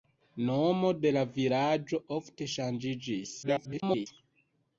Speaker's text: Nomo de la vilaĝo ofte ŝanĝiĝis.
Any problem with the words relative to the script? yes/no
yes